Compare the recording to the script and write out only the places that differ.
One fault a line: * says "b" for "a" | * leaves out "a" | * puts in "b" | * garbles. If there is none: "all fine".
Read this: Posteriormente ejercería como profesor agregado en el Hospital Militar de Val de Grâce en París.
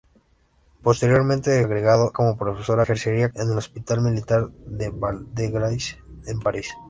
* says "agregado" for "ejercería"
* says "ejercería" for "agregado"